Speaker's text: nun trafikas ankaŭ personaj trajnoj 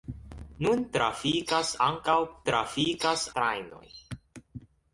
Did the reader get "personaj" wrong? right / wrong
wrong